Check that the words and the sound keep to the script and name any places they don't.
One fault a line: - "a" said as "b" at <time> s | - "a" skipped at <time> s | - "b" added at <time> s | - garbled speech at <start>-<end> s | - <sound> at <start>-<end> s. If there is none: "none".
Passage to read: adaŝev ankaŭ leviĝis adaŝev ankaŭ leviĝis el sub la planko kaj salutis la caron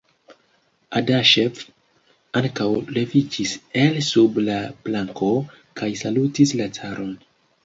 - "adaŝev ankaŭ leviĝis" skipped at 3.5 s